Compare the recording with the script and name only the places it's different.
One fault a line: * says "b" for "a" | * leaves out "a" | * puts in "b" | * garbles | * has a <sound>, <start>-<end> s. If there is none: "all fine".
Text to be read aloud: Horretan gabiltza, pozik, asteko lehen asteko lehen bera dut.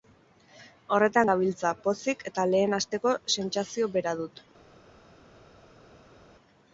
* says "eta" for "asteko"
* says "sentsazio" for "lehen"